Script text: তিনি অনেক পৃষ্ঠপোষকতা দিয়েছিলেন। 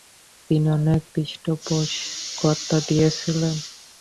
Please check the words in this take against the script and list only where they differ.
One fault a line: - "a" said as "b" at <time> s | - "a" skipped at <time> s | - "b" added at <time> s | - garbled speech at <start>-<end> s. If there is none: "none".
none